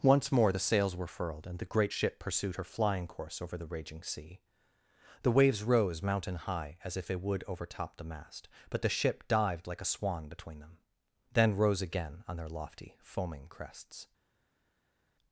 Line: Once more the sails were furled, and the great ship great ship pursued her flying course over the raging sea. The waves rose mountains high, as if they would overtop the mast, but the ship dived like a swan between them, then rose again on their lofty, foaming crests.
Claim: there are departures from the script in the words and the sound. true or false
true